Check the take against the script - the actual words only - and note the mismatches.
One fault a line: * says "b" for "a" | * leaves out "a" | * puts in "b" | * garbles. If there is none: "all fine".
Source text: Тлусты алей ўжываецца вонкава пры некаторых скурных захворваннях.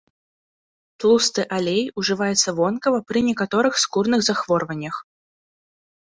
all fine